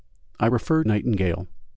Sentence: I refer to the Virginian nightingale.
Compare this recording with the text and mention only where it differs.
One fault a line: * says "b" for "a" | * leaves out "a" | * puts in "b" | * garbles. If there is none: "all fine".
* leaves out "to the Virginian"